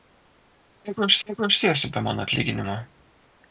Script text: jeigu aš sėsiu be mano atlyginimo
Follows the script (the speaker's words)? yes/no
no